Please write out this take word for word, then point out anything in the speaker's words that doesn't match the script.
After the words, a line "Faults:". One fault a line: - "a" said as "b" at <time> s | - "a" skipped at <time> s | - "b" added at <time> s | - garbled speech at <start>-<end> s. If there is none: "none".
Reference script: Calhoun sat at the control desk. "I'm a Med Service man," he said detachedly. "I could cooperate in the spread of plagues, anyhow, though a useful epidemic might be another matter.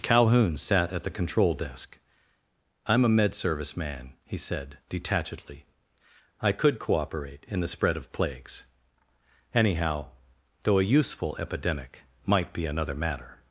Calhoun sat at the control desk. "I'm a Med Service man," he said detachedly. "I could cooperate in the spread of plagues, anyhow, though a useful epidemic might be another matter.
Faults:
none